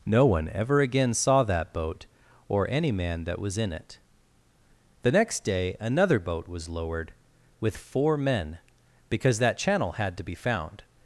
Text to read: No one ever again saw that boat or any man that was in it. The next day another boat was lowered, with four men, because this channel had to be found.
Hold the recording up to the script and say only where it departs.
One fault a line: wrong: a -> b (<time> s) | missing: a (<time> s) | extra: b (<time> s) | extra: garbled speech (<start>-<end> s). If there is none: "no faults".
wrong: this -> that (9.4 s)